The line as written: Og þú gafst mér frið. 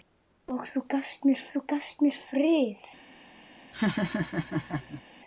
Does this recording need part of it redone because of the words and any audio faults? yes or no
yes